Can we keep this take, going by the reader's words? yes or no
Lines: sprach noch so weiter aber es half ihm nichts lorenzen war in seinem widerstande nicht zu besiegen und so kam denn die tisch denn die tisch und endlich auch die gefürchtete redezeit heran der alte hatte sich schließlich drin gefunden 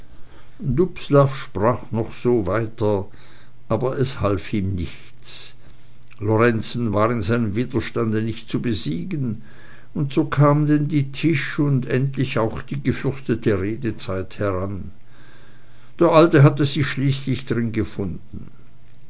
no